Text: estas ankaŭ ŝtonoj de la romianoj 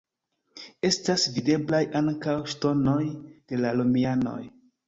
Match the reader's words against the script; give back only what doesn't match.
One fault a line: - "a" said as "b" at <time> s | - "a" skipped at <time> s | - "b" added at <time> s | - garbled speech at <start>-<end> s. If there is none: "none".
- "videblaj" added at 1.4 s